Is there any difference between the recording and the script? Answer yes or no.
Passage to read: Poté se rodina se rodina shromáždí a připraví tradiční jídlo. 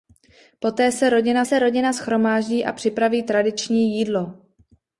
no